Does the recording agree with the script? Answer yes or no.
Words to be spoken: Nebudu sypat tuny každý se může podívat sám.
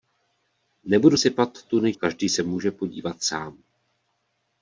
yes